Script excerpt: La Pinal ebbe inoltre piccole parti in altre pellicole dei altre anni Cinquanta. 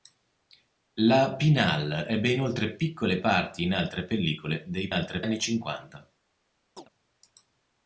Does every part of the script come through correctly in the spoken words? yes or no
yes